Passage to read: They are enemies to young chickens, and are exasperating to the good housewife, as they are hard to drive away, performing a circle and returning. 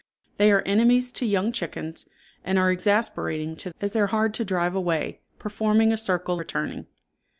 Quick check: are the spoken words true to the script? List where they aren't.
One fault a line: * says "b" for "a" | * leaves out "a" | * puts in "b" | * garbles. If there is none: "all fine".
* leaves out "the good housewife"
* leaves out "and"